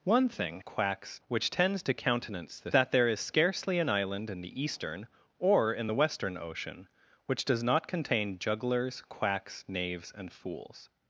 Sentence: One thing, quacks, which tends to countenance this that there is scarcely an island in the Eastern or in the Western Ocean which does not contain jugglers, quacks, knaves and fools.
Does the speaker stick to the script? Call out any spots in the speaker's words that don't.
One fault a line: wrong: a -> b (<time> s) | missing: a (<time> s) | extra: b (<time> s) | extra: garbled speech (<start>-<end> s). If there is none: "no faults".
no faults